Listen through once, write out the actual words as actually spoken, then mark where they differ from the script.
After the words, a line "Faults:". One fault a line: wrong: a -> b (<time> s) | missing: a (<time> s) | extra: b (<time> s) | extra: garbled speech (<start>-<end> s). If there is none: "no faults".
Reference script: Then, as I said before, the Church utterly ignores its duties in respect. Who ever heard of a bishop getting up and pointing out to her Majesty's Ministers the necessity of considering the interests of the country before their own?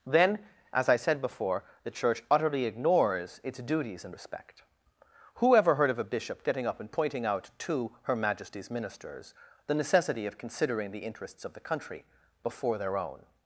Then, as I said before, the Church utterly ignores its duties in respect. Who ever heard of a bishop getting up and pointing out to her Majesty's Ministers the necessity of considering the interests of the country before their own?
Faults:
no faults